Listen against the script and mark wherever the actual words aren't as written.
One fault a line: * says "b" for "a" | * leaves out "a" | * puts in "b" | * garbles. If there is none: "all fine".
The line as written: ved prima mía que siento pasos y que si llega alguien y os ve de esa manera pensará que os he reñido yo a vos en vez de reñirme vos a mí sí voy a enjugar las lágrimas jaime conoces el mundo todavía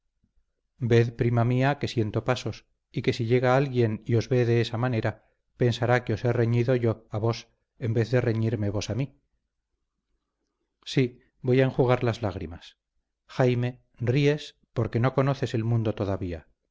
* puts in "ríes porque no"